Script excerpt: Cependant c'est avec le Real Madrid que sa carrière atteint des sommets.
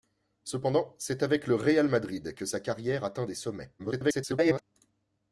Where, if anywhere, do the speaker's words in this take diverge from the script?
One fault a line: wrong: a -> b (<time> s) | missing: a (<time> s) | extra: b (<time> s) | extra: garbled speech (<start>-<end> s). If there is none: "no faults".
extra: garbled speech (3.8-4.6 s)